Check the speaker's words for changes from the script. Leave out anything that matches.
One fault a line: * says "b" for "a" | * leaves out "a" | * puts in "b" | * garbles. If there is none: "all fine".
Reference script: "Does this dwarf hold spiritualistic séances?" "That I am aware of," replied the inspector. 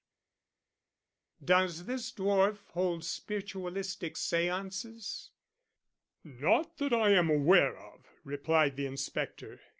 * puts in "Not"